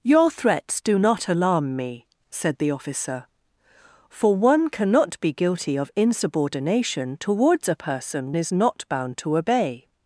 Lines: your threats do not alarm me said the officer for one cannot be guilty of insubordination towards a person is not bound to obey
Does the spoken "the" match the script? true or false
true